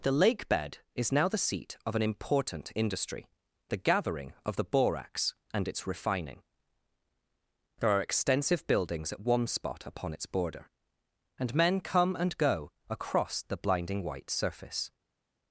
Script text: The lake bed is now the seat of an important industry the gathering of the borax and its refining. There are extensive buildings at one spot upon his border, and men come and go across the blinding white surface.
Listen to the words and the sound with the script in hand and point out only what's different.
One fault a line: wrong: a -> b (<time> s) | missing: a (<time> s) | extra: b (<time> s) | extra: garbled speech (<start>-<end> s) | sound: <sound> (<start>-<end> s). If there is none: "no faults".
wrong: his -> its (10.1 s)